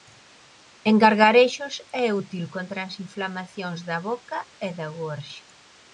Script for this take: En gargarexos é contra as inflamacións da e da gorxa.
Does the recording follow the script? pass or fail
fail